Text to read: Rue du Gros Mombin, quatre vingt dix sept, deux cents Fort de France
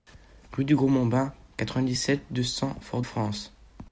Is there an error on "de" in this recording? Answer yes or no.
yes